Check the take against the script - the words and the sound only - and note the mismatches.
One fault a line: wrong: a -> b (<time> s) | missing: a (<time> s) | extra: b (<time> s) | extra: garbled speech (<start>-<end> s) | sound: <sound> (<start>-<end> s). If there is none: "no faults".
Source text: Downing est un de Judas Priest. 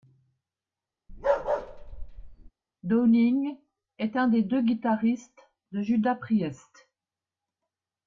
sound: bark (1.1-2.5 s)
extra: des deux guitaristes (4.3 s)